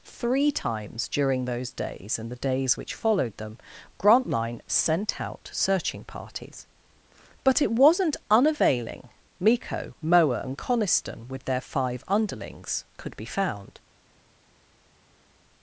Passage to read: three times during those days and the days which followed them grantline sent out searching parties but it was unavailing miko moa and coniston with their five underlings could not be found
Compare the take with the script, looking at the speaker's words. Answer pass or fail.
fail